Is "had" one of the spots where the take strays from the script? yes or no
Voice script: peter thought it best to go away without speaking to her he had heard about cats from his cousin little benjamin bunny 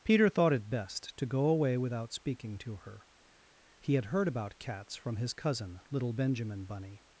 no